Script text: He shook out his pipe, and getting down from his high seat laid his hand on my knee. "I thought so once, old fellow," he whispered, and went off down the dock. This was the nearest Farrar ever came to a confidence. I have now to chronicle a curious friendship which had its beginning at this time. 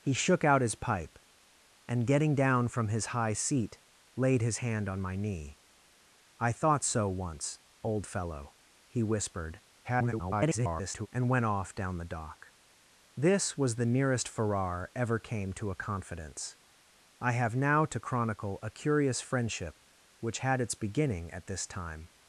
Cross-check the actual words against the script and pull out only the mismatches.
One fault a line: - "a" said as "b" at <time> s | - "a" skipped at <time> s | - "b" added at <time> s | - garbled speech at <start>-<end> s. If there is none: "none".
- garbled speech at 9.8-11.1 s